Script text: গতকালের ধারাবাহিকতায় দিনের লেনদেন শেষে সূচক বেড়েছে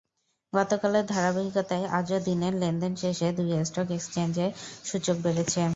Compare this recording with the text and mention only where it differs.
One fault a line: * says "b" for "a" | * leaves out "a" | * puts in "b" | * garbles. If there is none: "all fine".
* puts in "আজও"
* puts in "দুই স্টক এক্সচেঞ্জে"